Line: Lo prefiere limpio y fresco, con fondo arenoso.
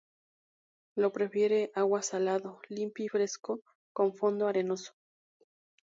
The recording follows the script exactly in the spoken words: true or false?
false